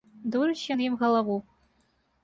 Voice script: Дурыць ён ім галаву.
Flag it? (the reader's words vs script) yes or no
no